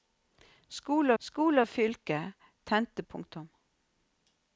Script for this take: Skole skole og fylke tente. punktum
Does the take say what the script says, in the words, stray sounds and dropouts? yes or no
yes